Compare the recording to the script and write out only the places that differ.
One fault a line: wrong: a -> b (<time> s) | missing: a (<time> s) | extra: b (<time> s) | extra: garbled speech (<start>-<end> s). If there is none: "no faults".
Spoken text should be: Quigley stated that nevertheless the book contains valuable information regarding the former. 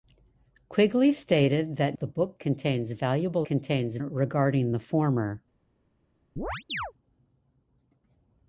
missing: nevertheless (2.0 s)
wrong: information -> contains (3.4 s)